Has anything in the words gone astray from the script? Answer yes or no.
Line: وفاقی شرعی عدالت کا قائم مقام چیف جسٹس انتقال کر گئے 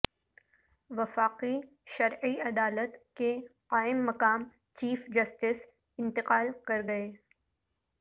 yes